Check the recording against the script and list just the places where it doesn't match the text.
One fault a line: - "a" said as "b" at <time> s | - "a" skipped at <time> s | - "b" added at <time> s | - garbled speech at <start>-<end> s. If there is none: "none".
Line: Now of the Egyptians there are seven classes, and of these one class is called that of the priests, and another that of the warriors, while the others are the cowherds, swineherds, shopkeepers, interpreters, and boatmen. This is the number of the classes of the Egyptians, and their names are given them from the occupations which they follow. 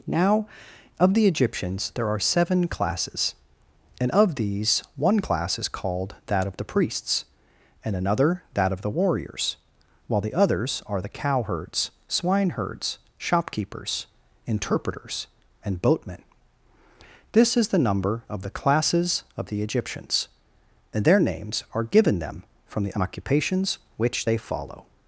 none